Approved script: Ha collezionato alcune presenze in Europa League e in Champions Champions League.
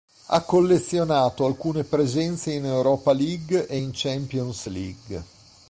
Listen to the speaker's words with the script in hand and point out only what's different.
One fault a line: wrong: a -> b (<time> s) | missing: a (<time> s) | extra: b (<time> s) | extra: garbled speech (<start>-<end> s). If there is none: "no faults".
missing: Champions (4.7 s)